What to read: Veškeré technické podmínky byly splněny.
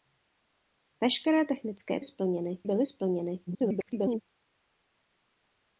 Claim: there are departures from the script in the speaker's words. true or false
true